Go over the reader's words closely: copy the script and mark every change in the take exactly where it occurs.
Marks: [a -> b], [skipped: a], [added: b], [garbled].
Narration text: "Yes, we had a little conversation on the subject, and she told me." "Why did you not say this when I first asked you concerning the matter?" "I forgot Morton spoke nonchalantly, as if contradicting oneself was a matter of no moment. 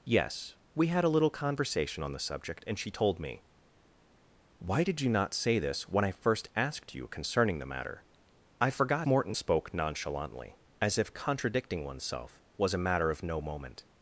"Yes, we had a little conversation on the subject, and she told me." "Why did you not say this when I first asked you concerning the matter?" "I forgot Morton spoke nonchalantly, as if contradicting oneself was a matter of no moment.